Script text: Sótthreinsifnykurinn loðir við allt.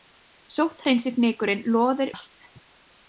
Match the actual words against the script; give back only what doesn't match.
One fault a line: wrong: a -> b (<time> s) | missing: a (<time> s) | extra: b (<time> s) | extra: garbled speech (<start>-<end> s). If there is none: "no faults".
missing: við (2.1 s)